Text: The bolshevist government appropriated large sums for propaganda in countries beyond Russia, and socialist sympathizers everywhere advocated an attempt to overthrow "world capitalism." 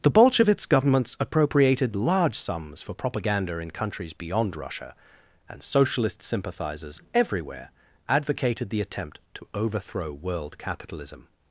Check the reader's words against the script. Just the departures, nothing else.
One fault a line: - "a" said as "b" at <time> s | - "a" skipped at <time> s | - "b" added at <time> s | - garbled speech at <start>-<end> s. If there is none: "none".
- "government" said as "governments" at 0.7 s
- "an" said as "the" at 8.7 s